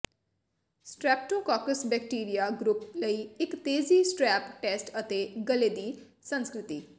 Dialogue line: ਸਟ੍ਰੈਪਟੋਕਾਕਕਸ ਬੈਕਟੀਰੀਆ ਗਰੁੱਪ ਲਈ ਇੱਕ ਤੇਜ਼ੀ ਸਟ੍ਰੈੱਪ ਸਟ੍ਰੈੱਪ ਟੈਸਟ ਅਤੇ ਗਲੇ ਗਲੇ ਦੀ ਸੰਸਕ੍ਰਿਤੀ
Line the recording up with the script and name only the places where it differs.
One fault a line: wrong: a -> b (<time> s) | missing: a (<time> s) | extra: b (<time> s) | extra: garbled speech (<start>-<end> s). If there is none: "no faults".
missing: ਸਟ੍ਰੈੱਪ (4.5 s)
missing: ਗਲੇ (5.7 s)